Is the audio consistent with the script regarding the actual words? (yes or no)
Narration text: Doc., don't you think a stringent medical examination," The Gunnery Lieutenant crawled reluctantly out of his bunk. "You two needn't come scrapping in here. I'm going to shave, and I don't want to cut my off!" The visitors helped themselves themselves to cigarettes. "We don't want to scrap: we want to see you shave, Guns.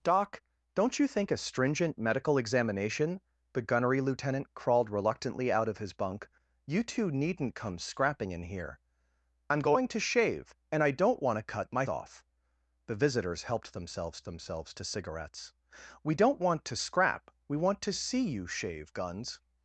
yes